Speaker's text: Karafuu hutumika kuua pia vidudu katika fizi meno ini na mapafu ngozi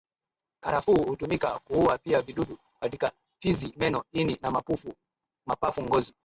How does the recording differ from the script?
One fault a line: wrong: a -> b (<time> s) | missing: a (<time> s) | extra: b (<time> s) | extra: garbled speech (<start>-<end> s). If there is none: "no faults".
no faults